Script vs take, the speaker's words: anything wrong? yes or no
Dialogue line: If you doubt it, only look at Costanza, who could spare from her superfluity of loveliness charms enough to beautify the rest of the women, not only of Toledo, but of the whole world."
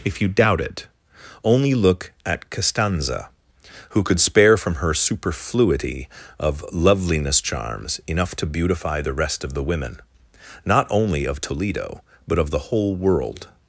no